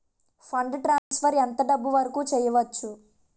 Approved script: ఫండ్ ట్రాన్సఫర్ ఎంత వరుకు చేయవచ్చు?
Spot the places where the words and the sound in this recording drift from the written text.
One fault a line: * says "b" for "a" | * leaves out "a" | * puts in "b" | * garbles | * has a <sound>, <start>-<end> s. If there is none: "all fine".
* has a dropout, 1.0-1.1 s
* puts in "డబ్బు"